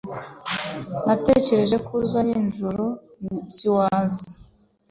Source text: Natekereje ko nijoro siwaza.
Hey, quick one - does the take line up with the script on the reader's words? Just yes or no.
no